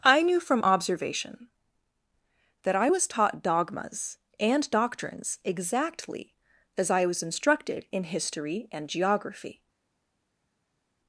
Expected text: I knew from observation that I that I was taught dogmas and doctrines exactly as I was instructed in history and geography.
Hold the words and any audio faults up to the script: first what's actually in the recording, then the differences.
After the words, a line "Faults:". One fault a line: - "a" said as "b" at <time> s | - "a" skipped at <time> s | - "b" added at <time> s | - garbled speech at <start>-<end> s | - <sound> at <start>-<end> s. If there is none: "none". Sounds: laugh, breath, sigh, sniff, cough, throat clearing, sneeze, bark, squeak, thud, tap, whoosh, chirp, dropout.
I knew from observation that I was taught dogmas and doctrines exactly as I was instructed in history and geography.
Faults:
- "that I" skipped at 2.9 s